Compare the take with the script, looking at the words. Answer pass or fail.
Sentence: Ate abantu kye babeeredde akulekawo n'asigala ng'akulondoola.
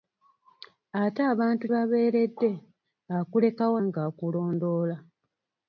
fail